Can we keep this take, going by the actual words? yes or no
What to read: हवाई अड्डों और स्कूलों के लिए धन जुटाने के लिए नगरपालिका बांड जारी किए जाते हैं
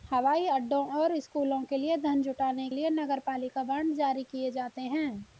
no